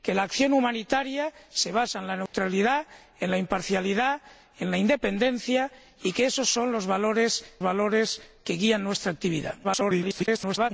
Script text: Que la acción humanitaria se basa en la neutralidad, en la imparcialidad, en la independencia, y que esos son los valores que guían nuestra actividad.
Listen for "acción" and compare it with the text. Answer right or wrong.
right